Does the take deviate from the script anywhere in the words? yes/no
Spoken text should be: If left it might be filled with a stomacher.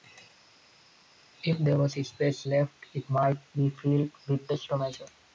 yes